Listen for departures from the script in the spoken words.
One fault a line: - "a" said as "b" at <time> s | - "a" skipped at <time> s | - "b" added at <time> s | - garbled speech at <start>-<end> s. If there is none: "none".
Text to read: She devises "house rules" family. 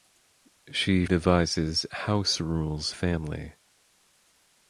none